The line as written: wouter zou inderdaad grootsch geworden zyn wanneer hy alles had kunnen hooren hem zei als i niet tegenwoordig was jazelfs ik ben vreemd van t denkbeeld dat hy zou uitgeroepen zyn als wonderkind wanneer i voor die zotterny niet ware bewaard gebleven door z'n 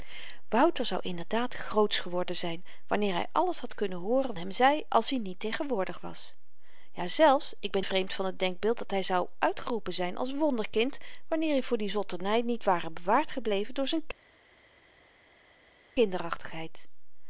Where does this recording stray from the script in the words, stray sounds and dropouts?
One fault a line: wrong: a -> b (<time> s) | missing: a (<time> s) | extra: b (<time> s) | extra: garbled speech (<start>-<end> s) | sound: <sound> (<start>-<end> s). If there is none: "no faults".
no faults